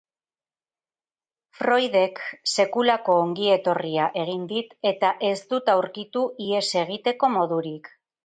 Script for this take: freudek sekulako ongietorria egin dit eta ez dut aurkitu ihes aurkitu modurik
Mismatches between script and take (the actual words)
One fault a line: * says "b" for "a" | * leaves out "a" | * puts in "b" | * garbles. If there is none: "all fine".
* says "egiteko" for "aurkitu"